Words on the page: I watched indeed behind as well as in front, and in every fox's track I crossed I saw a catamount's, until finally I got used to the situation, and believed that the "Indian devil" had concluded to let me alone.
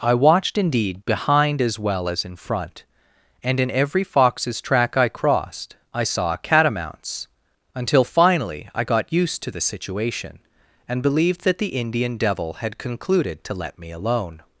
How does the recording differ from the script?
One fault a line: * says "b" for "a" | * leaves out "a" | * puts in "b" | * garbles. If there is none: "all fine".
* leaves out "a"